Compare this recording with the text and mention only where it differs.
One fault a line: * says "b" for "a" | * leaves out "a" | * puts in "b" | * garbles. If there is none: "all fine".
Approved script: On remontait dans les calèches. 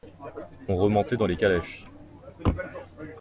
all fine